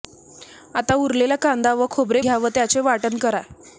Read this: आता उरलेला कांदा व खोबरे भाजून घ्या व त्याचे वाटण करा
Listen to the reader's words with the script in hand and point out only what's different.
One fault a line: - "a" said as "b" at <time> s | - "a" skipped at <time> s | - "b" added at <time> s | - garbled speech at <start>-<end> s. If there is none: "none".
- "भाजून" skipped at 2.2 s